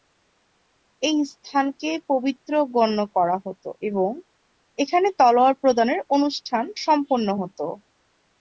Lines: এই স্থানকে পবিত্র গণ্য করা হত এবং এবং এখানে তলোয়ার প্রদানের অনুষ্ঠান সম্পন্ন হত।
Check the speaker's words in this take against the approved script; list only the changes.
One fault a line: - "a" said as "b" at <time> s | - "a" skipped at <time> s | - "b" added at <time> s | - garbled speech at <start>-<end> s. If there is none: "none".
- "এবং" skipped at 4.1 s